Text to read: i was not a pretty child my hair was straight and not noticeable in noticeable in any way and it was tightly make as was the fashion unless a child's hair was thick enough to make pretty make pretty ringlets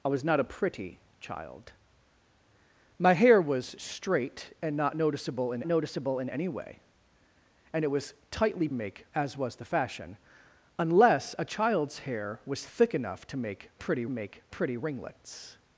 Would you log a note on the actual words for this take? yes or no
no